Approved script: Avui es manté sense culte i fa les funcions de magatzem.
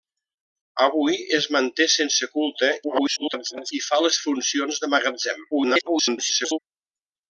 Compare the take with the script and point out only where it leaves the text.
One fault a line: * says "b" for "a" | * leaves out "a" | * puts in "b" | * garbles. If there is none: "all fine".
* garbles
* garbles